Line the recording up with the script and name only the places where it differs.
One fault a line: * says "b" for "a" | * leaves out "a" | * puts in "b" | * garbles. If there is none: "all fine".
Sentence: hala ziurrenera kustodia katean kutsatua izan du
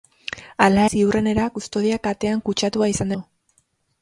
all fine